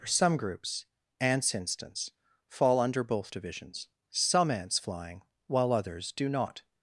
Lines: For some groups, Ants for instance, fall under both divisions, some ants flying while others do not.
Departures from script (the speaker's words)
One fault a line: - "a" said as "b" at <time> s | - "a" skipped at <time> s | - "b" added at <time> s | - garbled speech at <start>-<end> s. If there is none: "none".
- "for" skipped at 1.5 s